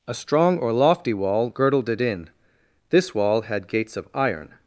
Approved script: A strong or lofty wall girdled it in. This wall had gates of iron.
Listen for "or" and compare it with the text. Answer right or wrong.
right